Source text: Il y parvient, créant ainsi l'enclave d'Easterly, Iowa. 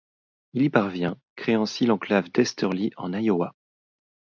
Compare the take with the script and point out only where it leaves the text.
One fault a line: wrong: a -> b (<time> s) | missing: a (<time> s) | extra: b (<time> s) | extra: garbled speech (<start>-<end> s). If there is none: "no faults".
extra: en (2.9 s)